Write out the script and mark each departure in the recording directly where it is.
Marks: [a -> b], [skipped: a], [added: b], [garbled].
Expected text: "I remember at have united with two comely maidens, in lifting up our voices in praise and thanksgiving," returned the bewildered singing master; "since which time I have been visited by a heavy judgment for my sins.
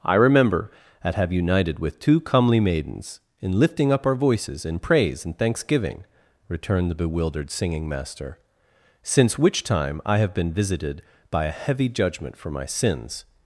"I remember at have united with two comely maidens, in lifting up our voices in praise and thanksgiving," returned the bewildered singing master; "since which time I have been visited by a heavy judgment for my sins.